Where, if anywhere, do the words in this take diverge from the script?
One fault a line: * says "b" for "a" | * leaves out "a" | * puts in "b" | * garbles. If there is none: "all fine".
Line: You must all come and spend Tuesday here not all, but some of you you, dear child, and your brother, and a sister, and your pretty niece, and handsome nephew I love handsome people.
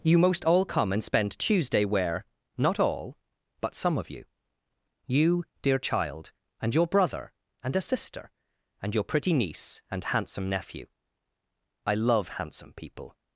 * says "most" for "must"
* says "where" for "here"